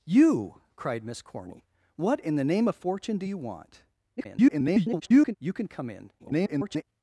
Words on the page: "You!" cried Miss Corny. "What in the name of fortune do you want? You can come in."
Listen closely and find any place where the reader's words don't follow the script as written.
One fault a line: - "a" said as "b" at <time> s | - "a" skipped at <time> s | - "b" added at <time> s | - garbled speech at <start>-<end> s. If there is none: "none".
- garbled speech at 4.2-5.4 s
- garbled speech at 6.2-6.8 s